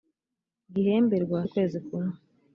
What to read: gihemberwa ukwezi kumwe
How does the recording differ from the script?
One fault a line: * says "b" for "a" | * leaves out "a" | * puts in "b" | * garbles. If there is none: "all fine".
all fine